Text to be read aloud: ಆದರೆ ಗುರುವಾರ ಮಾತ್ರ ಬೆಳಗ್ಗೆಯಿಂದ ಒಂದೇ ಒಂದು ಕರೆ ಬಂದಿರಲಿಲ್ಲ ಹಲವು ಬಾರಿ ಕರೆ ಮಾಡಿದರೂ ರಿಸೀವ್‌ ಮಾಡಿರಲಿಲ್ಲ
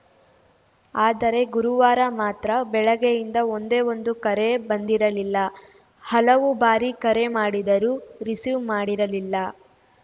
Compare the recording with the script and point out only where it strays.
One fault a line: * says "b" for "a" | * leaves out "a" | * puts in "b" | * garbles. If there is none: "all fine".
all fine